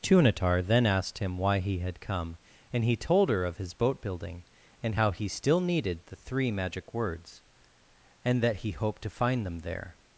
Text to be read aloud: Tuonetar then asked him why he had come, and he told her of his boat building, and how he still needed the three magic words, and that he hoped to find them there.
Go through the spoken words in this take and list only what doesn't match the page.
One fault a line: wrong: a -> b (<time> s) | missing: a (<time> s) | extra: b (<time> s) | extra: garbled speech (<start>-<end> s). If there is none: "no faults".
no faults